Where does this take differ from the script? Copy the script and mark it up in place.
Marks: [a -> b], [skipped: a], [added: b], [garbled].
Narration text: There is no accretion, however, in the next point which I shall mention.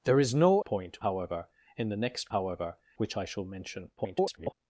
There is no [accretion, -> point] however, in the next [point -> however] which I shall mention. [garbled]